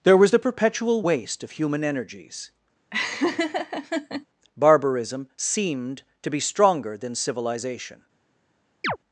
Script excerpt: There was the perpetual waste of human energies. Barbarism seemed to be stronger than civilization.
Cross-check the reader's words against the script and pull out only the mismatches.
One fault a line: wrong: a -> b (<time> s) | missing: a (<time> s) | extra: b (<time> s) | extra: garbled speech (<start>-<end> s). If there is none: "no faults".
no faults